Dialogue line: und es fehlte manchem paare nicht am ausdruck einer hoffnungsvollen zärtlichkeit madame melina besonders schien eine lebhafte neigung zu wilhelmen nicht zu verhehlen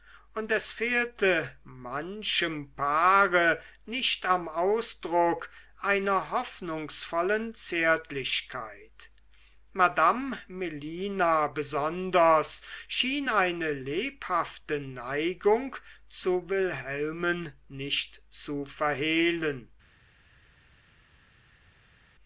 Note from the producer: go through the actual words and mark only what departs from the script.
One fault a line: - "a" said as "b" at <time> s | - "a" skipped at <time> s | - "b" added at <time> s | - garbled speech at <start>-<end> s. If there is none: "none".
none